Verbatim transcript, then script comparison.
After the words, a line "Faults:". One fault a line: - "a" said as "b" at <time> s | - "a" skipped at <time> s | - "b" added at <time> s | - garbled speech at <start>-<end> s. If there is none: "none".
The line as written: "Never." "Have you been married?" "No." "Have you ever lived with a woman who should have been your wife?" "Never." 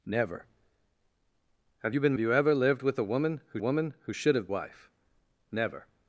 "Never." "Have you been you ever lived with a woman who woman who should have wife?" "Never."
Faults:
- "married No Have" skipped at 2.1 s
- "woman who" added at 3.6 s
- "been your" skipped at 4.5 s